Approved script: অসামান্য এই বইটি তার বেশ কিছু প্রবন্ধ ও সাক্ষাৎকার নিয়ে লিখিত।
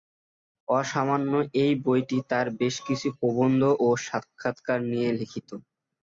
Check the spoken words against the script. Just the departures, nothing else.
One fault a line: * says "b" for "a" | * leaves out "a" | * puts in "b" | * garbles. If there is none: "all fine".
all fine